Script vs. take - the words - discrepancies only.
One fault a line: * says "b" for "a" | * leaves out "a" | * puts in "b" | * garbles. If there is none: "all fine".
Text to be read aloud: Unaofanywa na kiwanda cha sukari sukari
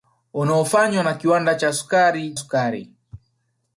all fine